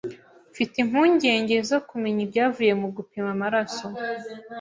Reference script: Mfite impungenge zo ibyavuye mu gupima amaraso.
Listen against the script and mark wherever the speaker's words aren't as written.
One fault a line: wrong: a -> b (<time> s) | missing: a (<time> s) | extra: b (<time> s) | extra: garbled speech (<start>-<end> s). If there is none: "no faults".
extra: kumenya (1.9 s)